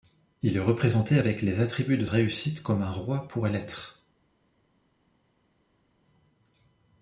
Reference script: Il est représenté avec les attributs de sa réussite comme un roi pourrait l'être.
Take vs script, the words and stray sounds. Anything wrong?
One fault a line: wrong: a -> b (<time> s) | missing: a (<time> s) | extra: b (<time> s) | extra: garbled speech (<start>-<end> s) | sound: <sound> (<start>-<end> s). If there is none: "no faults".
missing: sa (2.1 s)